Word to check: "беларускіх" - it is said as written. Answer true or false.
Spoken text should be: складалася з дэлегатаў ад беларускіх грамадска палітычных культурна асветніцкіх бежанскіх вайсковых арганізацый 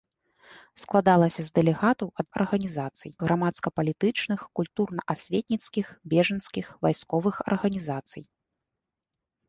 false